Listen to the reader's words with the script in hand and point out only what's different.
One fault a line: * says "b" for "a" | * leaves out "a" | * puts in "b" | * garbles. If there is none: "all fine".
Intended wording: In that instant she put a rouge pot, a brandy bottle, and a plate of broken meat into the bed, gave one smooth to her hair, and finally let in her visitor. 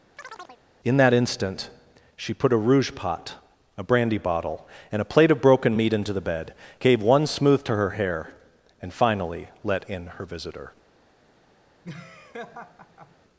all fine